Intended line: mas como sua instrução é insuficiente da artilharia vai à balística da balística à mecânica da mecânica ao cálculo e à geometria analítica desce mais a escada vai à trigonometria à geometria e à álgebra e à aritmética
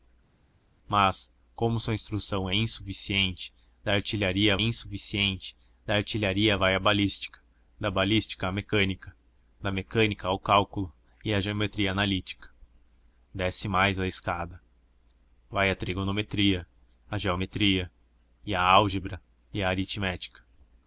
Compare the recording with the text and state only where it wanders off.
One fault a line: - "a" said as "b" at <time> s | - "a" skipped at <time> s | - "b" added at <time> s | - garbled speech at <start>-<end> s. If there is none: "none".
- "insuficiente da artilharia" added at 4.6 s